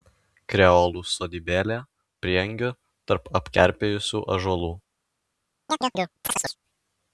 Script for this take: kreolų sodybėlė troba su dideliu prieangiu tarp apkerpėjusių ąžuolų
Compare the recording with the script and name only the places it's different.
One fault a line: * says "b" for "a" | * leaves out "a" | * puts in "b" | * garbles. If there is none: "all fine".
* leaves out "troba su dideliu"